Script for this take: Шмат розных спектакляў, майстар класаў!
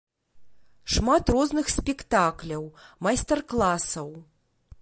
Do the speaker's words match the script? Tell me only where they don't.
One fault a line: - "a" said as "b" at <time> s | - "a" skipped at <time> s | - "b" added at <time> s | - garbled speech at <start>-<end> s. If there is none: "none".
none